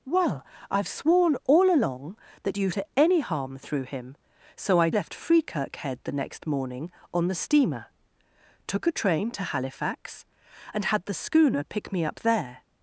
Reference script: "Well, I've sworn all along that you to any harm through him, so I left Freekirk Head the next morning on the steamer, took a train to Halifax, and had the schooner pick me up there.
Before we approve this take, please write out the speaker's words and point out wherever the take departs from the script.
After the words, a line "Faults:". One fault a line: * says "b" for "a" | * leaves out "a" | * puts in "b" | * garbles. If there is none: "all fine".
"Well, I've sworn all along that you to any harm through him, so I left Freekirk Head the next morning on the steamer, took a train to Halifax, and had the schooner pick me up there.
Faults:
all fine